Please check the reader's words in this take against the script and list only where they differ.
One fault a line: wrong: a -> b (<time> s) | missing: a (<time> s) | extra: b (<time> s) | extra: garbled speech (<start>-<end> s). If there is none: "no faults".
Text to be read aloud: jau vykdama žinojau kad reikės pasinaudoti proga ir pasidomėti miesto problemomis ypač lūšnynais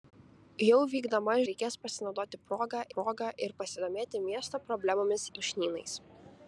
missing: žinojau kad (1.4 s)
extra: proga (3.0 s)
missing: ypač (5.3 s)